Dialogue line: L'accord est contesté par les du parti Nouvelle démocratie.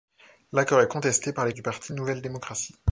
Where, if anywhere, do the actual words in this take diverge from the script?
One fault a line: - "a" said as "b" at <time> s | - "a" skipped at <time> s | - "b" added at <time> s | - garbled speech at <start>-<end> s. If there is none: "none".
none